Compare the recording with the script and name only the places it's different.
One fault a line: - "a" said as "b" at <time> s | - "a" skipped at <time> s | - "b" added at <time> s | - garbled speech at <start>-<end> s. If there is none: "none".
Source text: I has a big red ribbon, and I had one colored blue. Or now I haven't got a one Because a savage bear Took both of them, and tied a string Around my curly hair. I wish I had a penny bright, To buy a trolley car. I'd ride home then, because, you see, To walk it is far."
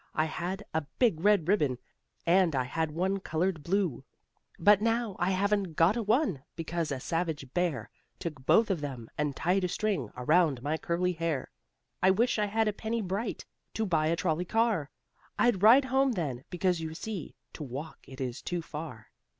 - "has" said as "had" at 0.2 s
- "Or" said as "But" at 4.6 s
- "too" added at 18.4 s